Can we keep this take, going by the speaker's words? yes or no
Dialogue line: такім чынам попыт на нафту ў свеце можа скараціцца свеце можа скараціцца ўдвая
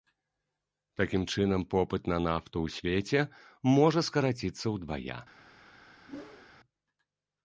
no